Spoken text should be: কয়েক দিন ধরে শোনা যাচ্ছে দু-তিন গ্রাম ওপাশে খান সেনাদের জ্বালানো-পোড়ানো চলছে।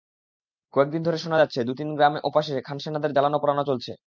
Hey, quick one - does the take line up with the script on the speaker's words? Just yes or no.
yes